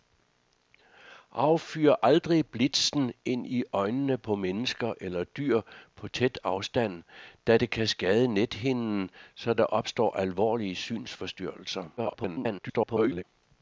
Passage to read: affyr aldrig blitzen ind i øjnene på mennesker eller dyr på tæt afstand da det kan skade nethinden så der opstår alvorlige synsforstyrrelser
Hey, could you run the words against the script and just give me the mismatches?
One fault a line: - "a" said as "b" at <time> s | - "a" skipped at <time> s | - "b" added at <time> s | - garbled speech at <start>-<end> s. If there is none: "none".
- garbled speech at 12.0-13.2 s